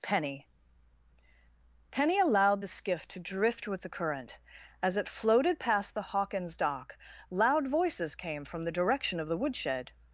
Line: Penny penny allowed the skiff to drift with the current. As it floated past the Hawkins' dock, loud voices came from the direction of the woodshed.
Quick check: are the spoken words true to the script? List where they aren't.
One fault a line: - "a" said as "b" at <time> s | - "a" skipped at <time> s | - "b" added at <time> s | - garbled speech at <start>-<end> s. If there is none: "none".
none